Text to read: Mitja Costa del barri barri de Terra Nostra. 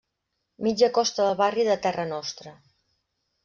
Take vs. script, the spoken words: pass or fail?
fail